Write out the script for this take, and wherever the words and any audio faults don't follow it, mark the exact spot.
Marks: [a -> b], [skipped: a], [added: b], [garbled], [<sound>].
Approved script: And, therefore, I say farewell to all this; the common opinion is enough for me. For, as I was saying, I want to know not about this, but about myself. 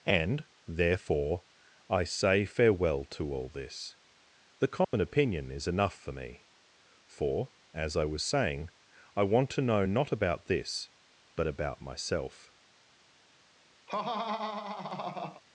And, therefore, I say farewell to all this; the common [dropout] opinion is enough for me. For, as I was saying, I want to know not about this, but about myself. [laugh]